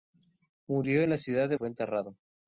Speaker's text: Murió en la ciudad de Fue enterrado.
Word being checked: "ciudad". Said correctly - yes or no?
yes